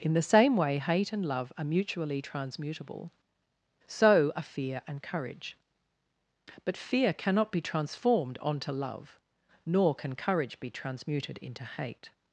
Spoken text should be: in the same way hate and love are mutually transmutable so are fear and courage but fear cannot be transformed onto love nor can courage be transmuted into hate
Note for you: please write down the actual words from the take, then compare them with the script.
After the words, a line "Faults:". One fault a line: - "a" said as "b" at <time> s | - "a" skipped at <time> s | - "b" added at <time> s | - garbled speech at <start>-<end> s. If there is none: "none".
in the same way hate and love are mutually transmutable so are fear and courage but fear cannot be transformed onto love nor can courage be transmuted into hate
Faults:
none